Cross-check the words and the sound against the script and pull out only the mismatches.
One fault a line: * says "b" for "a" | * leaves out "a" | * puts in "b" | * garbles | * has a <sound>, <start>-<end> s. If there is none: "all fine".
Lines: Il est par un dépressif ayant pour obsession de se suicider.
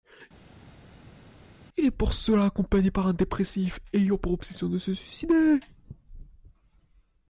* puts in "pour cela accompagné"